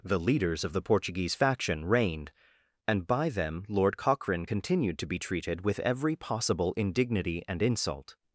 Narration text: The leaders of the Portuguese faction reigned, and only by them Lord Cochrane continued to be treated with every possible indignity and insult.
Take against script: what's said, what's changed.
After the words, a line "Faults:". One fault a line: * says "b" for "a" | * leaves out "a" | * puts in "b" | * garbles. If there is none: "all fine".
The leaders of the Portuguese faction reigned, and by them Lord Cochrane continued to be treated with every possible indignity and insult.
Faults:
* leaves out "only"